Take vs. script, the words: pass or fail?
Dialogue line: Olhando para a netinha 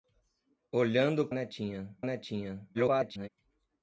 fail